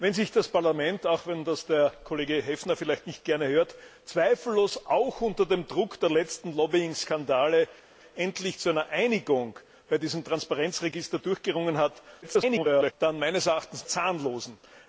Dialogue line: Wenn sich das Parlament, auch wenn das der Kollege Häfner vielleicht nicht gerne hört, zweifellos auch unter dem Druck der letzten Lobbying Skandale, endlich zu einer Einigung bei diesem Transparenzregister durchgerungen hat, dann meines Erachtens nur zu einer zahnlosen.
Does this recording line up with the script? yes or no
no